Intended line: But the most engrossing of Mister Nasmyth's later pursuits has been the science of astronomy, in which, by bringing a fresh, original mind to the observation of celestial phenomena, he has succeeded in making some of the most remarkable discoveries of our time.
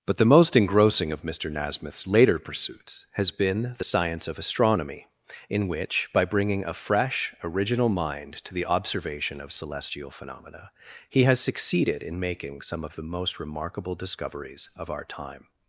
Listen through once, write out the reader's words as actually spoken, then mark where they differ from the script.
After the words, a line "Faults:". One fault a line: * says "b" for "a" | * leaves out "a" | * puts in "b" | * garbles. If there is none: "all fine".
But the most engrossing of Mister Nasmyth's later pursuits has been the science of astronomy, in which, by bringing a fresh, original mind to the observation of celestial phenomena, he has succeeded in making some of the most remarkable discoveries of our time.
Faults:
all fine